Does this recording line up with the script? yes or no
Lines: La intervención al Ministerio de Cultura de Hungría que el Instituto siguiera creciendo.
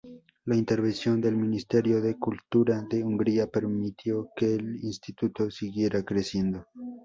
no